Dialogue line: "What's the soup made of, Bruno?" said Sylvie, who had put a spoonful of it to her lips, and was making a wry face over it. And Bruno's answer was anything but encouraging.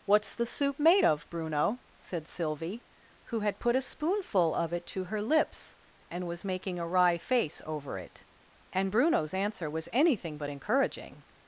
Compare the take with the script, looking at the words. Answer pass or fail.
pass